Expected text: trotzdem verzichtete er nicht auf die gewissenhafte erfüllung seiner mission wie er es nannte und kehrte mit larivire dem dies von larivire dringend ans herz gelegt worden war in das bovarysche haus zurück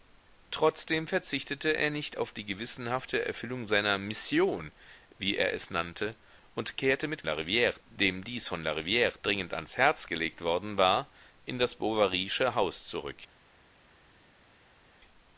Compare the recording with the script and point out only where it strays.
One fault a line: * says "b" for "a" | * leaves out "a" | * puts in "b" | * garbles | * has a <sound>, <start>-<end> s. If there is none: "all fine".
all fine